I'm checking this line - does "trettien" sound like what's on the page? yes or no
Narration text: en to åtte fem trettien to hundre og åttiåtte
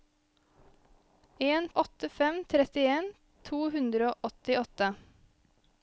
yes